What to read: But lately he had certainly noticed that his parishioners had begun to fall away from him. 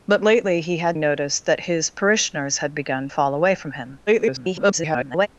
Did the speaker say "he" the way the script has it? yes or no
yes